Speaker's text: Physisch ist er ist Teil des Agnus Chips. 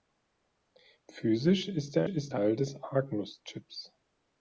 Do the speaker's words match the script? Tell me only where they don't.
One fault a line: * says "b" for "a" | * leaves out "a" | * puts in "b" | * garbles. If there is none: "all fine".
all fine